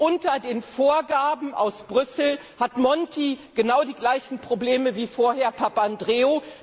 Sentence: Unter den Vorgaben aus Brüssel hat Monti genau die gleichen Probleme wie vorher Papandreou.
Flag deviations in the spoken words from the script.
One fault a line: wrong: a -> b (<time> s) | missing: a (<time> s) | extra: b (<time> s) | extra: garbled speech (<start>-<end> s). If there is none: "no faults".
no faults